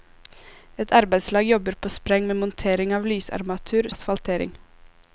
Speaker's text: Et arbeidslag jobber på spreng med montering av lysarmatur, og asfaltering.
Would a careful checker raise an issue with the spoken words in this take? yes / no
no